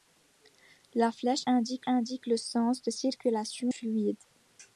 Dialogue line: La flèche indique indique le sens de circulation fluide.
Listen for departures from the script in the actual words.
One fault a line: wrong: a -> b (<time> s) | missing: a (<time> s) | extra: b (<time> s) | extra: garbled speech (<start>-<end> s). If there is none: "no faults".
no faults